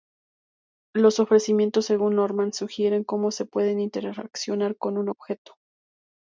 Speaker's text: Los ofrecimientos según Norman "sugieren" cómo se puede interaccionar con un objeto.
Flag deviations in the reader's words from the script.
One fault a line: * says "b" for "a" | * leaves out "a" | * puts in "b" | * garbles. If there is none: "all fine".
all fine